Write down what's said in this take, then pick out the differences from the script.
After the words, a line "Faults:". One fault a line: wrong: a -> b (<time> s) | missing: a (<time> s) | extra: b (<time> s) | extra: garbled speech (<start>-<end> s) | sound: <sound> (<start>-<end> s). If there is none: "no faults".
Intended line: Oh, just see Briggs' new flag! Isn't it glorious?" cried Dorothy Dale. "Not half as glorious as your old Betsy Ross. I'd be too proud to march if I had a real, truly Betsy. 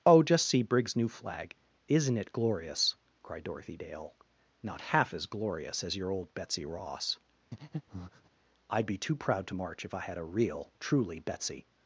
Oh, just see Briggs' new flag! Isn't it glorious?" cried Dorothy Dale. "Not half as glorious as your old Betsy Ross. I'd be too proud to march if I had a real, truly Betsy.
Faults:
sound: breath (7.5-8.3 s)